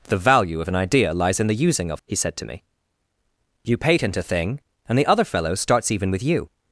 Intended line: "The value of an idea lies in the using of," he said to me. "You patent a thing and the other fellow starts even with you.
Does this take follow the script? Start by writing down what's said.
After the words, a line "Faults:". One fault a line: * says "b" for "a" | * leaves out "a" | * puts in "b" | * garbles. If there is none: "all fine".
"The value of an idea lies in the using of," he said to me. "You patent a thing and the other fellow starts even with you.
Faults:
all fine